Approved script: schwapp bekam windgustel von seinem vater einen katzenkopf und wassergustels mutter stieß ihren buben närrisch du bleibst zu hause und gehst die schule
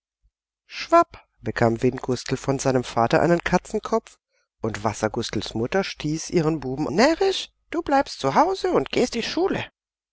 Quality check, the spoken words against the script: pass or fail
pass